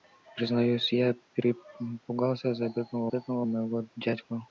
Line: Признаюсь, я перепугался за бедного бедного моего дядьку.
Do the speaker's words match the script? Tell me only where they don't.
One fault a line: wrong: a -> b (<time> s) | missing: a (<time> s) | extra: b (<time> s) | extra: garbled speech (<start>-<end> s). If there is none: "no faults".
no faults